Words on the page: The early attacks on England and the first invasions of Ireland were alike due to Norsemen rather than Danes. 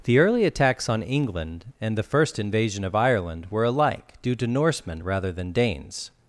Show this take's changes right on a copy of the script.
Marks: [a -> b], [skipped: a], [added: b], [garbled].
The early attacks on England and the first [invasions -> invasion] of Ireland were alike due to Norsemen rather than Danes.